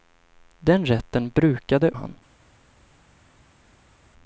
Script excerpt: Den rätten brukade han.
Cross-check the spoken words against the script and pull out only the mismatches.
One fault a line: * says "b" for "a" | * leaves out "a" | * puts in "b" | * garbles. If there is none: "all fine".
all fine